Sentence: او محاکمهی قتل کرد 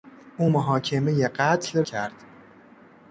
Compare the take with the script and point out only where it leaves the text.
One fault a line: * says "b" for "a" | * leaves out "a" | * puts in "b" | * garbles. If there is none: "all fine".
all fine